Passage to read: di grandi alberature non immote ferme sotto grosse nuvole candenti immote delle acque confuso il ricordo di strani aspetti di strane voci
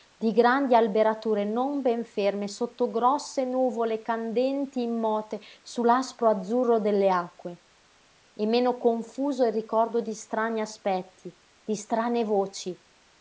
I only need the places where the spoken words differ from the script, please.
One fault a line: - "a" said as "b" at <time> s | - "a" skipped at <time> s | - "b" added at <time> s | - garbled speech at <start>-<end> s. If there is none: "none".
- "immote" said as "ben" at 1.8 s
- "su l'aspro azzurro" added at 5.6 s
- "e meno" added at 8.3 s